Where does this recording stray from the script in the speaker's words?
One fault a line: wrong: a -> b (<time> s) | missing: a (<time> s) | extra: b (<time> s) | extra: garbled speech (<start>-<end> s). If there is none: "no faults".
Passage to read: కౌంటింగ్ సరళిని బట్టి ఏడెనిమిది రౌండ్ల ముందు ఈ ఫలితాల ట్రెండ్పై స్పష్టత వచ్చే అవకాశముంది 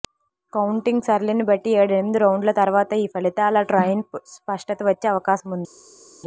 wrong: ముందు -> తర్వాత (2.5 s)